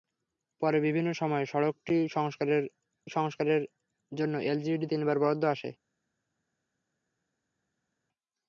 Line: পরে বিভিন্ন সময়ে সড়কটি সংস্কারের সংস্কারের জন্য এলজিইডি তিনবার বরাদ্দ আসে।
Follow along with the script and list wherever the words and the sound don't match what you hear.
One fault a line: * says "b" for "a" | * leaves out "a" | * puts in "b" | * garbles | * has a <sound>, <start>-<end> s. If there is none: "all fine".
all fine